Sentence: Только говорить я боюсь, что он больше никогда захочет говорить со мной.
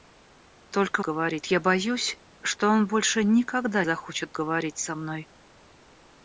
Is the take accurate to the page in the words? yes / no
yes